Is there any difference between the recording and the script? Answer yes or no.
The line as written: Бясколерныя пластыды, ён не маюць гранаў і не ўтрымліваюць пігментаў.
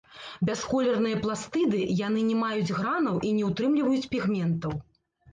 yes